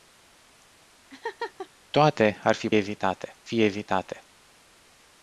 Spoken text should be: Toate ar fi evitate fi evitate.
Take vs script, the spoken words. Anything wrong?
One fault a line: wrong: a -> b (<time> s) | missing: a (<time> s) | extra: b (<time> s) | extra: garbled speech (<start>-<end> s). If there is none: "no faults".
no faults